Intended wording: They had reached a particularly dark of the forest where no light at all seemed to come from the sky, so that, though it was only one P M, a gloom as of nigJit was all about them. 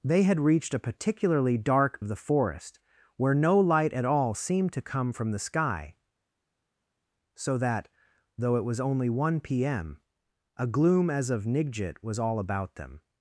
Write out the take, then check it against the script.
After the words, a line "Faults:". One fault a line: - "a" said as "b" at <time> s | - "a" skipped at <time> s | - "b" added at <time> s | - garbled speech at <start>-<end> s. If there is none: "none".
They had reached a particularly dark of the forest where no light at all seemed to come from the sky, so that, though it was only one P M, a gloom as of nigJit was all about them.
Faults:
none